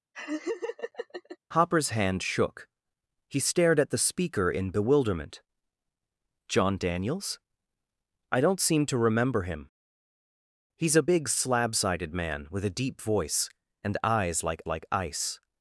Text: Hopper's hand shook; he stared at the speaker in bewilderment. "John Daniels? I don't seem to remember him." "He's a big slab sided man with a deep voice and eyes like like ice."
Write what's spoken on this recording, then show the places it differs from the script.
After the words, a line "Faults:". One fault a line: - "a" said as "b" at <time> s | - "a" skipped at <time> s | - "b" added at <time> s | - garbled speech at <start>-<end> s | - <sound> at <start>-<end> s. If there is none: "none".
Hopper's hand shook; he stared at the speaker in bewilderment. "John Daniels? I don't seem to remember him." "He's a big slab sided man with a deep voice and eyes like like ice."
Faults:
- laugh at 0.1-1.4 s